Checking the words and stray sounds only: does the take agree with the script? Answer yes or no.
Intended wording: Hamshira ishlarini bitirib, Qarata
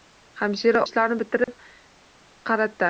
no